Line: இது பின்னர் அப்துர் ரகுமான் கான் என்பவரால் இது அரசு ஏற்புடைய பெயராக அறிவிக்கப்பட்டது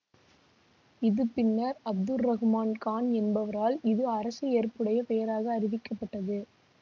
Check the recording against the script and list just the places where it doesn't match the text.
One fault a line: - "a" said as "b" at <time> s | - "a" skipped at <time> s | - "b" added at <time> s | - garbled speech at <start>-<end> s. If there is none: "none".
none